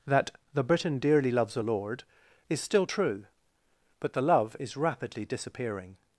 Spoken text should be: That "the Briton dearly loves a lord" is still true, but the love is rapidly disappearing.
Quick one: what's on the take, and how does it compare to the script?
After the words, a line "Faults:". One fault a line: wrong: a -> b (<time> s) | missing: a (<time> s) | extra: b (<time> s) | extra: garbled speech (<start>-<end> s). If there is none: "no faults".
That "the Briton dearly loves a lord" is still true, but the love is rapidly disappearing.
Faults:
no faults